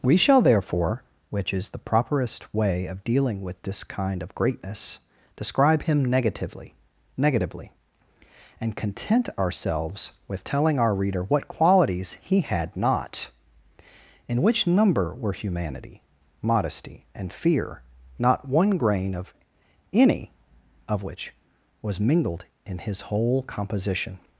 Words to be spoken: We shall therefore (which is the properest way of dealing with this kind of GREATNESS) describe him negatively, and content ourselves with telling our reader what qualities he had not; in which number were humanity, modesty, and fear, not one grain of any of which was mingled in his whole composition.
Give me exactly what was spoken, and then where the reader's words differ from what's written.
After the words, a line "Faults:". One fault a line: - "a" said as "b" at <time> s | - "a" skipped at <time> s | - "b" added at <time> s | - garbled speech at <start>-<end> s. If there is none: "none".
We shall therefore (which is the properest way of dealing with this kind of GREATNESS) describe him negatively negatively, and content ourselves with telling our reader what qualities he had not; in which number were humanity, modesty, and fear, not one grain of any of which was mingled in his whole composition.
Faults:
- "negatively" added at 7.2 s